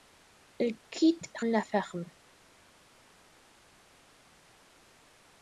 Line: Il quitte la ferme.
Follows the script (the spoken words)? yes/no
yes